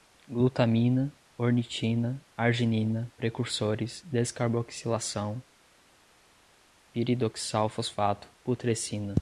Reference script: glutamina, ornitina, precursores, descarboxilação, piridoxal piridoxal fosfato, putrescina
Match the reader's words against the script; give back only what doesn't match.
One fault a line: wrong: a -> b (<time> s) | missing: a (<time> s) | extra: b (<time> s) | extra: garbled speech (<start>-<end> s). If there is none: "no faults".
extra: arginina (2.4 s)
missing: piridoxal (7.7 s)